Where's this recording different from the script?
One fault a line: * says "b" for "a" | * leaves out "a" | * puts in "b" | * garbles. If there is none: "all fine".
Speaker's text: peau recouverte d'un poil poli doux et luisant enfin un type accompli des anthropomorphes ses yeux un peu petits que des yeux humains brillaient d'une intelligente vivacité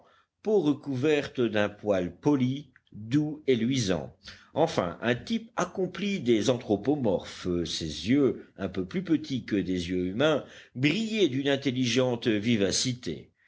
* puts in "plus"